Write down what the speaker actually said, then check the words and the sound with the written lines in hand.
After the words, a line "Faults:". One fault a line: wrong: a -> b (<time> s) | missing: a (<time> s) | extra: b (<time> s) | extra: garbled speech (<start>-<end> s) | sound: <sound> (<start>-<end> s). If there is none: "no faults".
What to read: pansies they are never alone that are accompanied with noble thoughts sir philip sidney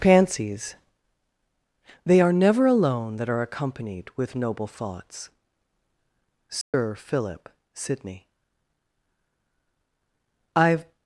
pansies they are never alone that are accompanied with noble thoughts sir philip sidney i've
Faults:
sound: dropout (6.6-6.7 s)
extra: i've (10.6 s)